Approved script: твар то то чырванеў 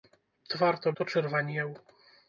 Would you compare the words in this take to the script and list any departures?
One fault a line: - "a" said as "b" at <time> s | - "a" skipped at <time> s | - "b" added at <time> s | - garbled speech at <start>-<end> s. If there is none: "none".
none